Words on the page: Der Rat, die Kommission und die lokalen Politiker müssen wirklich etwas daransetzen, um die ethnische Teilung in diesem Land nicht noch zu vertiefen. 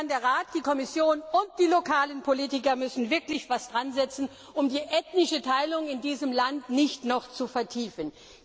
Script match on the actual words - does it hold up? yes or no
yes